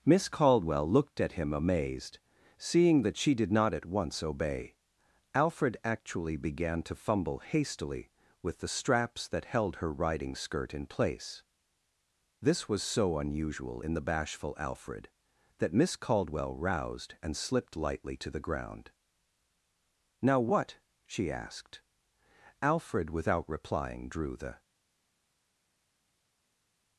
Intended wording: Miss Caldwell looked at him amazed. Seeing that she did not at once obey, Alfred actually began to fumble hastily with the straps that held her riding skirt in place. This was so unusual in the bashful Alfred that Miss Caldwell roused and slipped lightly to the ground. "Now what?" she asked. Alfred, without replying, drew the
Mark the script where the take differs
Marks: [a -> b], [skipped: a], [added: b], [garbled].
Miss Caldwell looked at him amazed. Seeing that she did not at once obey, Alfred actually began to fumble hastily with the straps that held her riding skirt in place. This was so unusual in the bashful Alfred that Miss Caldwell roused and slipped lightly to the ground. "Now what?" she asked. Alfred, without replying, drew the